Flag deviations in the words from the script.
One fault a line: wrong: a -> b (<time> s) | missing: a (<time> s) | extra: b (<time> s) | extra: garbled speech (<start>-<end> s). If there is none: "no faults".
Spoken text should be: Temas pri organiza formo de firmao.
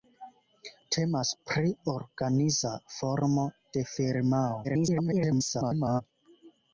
extra: garbled speech (4.6-6.0 s)